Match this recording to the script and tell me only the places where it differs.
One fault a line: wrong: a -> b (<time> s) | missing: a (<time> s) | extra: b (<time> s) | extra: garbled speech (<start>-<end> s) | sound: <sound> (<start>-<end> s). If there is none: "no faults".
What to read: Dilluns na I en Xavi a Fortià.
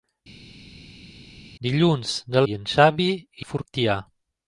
no faults